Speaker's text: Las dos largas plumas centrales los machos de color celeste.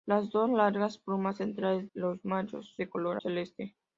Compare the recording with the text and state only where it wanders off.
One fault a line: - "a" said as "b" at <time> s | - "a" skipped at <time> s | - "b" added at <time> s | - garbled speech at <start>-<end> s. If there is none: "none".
none